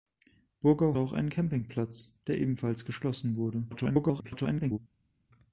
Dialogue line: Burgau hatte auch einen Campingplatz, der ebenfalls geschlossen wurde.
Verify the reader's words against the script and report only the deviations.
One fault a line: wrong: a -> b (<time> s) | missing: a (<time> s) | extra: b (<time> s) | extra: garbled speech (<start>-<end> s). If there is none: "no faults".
missing: hatte (1.0 s)
extra: garbled speech (3.7-4.8 s)